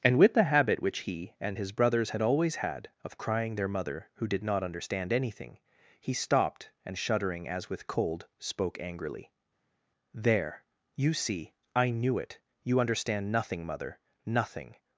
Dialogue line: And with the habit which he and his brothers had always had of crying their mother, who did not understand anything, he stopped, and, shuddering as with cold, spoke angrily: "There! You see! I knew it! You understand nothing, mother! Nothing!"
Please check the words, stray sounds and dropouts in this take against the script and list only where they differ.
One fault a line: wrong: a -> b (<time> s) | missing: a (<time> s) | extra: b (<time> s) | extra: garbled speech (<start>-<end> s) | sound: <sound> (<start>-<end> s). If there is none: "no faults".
no faults